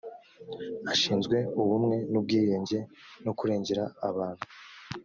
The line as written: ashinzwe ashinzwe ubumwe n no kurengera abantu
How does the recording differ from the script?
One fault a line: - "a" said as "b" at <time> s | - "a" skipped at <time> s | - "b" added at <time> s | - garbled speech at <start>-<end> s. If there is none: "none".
- "ashinzwe" skipped at 1.4 s
- "ubwiyunge" added at 2.2 s